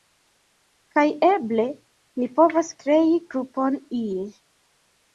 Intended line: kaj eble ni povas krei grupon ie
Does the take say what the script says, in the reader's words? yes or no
yes